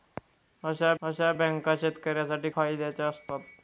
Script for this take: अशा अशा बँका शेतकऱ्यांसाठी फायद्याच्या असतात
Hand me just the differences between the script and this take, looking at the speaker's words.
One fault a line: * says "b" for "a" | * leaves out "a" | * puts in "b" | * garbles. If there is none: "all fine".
all fine